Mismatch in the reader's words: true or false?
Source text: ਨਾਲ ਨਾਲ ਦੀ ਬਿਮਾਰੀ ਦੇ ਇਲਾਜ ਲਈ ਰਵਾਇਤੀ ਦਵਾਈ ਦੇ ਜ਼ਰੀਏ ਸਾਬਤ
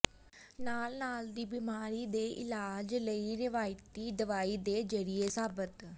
false